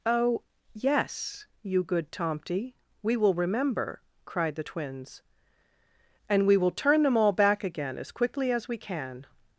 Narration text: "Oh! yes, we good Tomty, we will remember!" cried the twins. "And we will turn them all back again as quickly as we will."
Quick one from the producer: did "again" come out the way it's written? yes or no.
yes